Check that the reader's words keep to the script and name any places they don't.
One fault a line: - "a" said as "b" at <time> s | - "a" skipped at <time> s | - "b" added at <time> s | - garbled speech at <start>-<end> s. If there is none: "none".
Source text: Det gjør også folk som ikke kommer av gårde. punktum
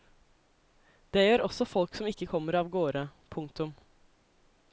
none